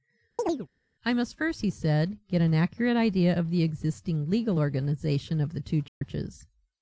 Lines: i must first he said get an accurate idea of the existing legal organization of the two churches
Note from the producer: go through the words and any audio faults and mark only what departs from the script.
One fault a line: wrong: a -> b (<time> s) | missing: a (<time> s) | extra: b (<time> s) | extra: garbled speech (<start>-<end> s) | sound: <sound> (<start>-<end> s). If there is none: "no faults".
sound: chirp (0.4-0.7 s)
sound: dropout (5.9-6.0 s)